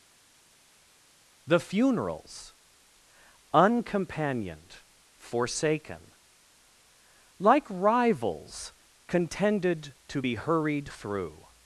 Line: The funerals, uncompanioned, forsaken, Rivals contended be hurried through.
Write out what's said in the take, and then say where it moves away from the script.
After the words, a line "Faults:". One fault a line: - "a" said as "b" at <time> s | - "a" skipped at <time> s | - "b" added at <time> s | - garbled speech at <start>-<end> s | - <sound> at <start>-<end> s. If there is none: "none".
The funerals, uncompanioned, forsaken, Like rivals contended to be hurried through.
Faults:
- "Like" added at 7.4 s
- "to" added at 10.1 s